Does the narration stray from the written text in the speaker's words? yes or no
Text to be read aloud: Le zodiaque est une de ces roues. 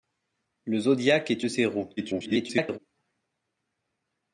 yes